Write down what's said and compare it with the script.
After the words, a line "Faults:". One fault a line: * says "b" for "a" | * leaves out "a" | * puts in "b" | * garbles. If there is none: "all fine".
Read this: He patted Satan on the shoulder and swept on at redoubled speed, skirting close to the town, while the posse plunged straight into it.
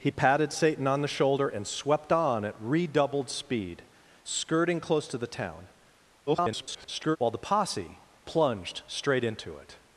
He patted Satan on the shoulder and swept on at redoubled speed, skirting close to the town, [garbled] while the posse plunged straight into it.
Faults:
* garbles